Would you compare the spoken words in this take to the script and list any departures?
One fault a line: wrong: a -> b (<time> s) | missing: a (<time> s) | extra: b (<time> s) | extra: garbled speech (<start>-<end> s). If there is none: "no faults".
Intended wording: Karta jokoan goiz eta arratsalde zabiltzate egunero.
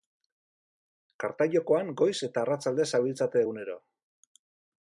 no faults